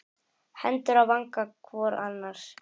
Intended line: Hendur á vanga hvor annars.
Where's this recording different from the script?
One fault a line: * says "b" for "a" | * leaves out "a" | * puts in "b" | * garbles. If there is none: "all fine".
all fine